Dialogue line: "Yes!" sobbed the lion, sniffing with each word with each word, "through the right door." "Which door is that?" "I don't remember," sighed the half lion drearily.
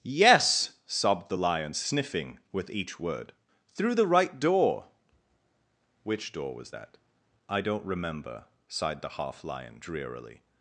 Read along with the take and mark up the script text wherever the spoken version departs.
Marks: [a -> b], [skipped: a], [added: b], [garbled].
"Yes!" sobbed the lion, sniffing with each word [skipped: with each word,] "through the right door." "Which door [is -> was] that?" "I don't remember," sighed the half lion drearily.